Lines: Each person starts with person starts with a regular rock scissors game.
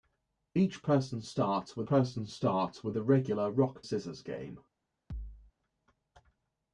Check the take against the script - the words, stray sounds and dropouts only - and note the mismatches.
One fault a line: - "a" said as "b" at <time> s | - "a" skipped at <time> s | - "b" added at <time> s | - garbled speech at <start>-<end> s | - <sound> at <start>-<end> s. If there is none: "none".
- thud at 5.1-5.5 s